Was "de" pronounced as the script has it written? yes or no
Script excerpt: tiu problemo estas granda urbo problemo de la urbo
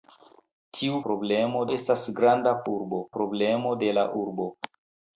yes